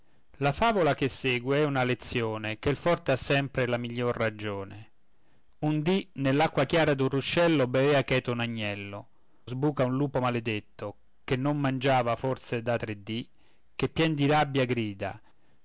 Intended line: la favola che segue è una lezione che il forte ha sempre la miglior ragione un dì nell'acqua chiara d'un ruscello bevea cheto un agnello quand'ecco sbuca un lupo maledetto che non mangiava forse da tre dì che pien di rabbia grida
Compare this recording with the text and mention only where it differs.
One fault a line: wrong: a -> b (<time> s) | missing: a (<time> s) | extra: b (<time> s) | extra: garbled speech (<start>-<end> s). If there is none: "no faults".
missing: quand'ecco (9.1 s)